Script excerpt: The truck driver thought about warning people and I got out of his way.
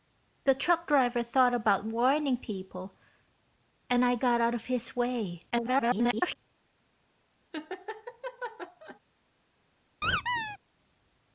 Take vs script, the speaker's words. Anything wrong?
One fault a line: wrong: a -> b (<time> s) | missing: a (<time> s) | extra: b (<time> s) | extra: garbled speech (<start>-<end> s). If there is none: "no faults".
extra: garbled speech (5.5-6.4 s)